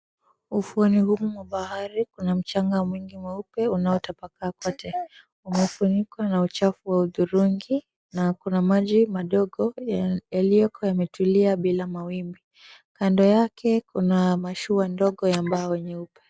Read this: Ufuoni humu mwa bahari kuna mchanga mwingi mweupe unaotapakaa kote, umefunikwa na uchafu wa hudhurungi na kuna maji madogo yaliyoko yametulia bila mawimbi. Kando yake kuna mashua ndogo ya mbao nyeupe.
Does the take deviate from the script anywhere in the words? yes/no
no